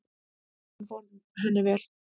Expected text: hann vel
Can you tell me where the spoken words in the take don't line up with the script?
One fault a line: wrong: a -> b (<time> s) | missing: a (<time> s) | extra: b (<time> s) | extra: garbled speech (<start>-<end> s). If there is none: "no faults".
extra: fór henni (0.9 s)